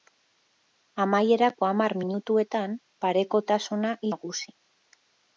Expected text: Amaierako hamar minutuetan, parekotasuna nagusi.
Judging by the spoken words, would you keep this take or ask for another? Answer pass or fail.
pass